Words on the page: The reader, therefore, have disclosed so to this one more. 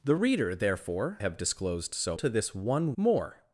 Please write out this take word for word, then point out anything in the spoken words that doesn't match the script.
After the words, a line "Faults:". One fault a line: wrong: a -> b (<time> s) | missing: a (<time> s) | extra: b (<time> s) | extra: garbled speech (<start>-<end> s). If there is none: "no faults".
The reader, therefore, have disclosed so to this one more.
Faults:
no faults